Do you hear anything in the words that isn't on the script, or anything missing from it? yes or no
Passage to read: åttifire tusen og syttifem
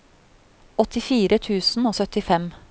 no